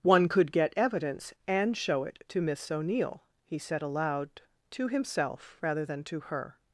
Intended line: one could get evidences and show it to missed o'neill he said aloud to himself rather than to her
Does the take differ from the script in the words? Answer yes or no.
yes